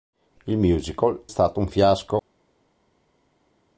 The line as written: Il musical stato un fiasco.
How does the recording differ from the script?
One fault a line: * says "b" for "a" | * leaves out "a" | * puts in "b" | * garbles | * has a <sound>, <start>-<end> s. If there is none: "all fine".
all fine